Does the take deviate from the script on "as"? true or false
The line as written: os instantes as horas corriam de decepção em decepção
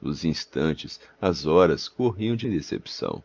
false